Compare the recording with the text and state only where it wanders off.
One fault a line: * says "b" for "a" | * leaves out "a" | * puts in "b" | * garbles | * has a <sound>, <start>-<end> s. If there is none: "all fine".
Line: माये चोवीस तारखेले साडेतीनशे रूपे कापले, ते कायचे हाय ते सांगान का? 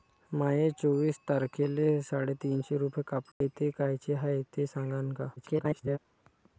* has a dropout, 3.3-3.4 s
* garbles